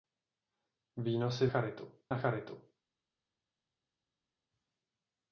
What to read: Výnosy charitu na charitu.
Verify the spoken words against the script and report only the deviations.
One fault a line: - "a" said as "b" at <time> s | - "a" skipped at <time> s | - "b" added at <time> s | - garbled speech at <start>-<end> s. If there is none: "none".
none